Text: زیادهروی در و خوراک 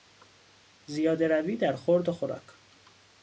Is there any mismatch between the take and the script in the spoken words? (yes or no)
yes